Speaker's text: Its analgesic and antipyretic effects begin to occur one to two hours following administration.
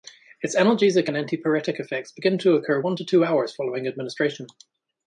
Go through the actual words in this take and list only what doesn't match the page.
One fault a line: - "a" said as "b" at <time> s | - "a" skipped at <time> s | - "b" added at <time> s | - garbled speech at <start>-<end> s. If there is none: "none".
none